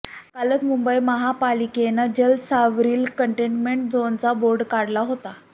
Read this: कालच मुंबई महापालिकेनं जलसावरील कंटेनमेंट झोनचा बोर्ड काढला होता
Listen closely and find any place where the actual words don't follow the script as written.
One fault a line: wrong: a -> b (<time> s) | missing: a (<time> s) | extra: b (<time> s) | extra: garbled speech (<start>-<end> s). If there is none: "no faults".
no faults